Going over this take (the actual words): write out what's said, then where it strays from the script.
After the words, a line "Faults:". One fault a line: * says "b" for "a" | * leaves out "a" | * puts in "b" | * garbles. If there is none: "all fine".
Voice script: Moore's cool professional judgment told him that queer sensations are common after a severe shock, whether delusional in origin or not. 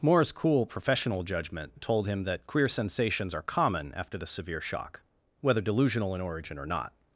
Moore's cool professional judgment told him that queer sensations are common after the severe shock, whether delusional in origin or not.
Faults:
* says "the" for "a"